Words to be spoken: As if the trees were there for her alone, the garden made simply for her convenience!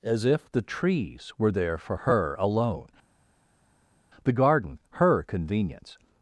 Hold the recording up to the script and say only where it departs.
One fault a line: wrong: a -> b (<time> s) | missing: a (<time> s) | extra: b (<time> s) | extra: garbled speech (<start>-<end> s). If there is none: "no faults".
missing: made simply for (4.8 s)